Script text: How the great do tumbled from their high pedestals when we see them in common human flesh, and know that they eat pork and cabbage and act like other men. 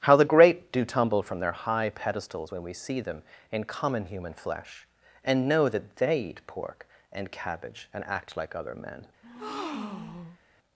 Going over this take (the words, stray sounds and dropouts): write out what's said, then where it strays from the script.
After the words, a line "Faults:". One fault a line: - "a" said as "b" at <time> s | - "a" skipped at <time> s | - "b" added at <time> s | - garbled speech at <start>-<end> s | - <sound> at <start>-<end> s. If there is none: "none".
How the great do tumble from their high pedestals when we see them in common human flesh, and know that they eat pork and cabbage and act like other men.
Faults:
- "tumbled" said as "tumble" at 0.8 s
- breath at 9.2-10.4 s